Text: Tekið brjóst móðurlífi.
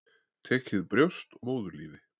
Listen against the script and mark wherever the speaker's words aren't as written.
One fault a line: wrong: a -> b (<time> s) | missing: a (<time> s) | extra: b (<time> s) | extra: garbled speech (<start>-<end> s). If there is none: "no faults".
no faults